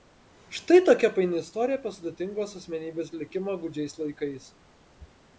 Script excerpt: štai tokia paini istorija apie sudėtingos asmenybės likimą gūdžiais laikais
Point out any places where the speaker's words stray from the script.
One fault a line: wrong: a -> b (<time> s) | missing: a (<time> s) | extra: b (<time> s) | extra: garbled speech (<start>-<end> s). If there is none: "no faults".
no faults